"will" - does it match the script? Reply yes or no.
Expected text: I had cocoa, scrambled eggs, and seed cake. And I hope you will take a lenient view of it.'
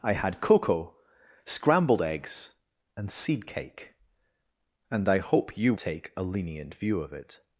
no